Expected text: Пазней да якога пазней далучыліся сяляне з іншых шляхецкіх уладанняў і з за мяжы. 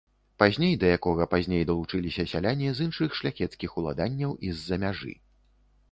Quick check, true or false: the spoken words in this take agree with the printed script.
true